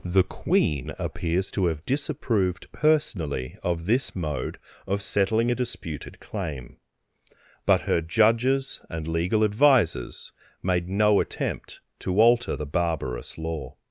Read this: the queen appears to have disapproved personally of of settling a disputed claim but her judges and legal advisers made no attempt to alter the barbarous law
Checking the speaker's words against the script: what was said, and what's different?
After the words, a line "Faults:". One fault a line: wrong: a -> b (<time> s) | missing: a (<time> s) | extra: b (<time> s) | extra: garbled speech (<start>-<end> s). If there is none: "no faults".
the queen appears to have disapproved personally of this mode of settling a disputed claim but her judges and legal advisers made no attempt to alter the barbarous law
Faults:
extra: this mode (3.9 s)